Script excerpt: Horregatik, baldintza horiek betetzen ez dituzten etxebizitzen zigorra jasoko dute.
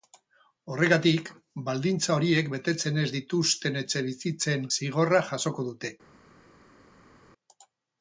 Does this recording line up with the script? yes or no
yes